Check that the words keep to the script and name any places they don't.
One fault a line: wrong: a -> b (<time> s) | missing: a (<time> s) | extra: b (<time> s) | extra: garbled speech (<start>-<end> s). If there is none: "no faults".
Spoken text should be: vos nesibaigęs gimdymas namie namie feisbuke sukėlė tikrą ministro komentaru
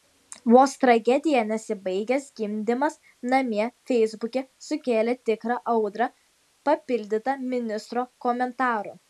extra: tragedija (0.8 s)
missing: namie (3.7 s)
extra: audrą papildyta (5.8 s)